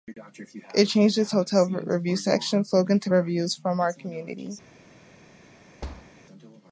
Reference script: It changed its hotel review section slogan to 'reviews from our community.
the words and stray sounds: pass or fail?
fail